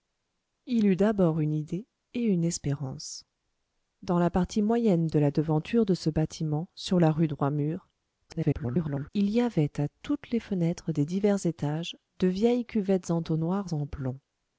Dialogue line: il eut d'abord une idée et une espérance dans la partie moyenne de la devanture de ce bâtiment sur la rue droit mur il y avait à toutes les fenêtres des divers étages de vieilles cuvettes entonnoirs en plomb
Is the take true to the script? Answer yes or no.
no